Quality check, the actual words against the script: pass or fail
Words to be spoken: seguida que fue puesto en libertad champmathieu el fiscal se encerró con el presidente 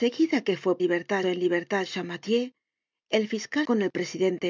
fail